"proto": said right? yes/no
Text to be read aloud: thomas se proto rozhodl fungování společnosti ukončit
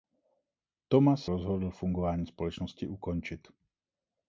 no